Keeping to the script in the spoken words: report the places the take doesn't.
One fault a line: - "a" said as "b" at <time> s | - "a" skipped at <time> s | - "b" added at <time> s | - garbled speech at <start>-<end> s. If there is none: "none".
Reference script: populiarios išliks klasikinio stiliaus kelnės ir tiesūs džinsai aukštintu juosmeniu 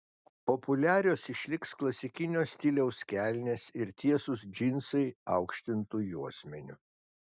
none